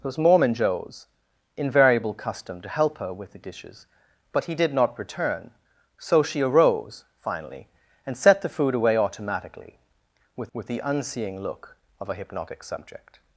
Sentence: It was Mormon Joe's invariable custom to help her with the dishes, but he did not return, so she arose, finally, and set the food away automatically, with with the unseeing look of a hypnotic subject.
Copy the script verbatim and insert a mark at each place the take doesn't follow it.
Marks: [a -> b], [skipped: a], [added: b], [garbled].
It was Mormon Joe's invariable custom to help her with the dishes, but he did not return, so she arose, finally, and set the food away automatically, with with the unseeing look of a hypnotic subject.